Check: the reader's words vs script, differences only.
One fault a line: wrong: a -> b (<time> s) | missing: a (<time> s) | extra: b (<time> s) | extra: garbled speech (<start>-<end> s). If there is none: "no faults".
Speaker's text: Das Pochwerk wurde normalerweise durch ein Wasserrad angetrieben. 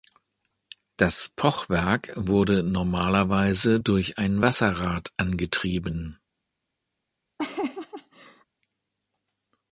no faults